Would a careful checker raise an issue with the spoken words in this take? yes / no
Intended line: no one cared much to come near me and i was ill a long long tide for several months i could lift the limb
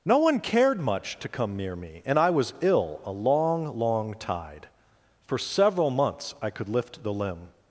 no